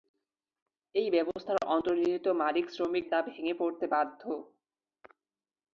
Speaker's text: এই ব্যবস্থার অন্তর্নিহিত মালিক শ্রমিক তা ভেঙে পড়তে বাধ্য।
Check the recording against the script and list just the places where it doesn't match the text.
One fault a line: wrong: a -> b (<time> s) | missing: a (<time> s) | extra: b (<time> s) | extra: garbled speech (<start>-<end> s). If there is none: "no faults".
no faults